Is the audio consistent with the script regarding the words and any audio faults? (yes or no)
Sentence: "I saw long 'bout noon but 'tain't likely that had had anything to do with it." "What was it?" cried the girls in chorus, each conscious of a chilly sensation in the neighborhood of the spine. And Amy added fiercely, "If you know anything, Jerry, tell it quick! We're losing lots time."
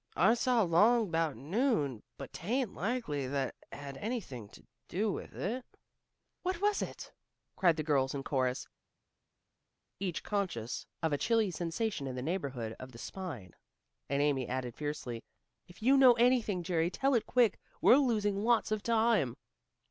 no